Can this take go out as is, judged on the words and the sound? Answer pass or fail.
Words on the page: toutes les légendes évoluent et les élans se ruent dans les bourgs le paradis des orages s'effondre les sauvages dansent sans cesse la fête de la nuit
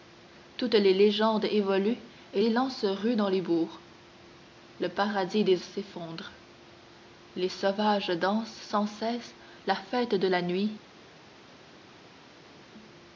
fail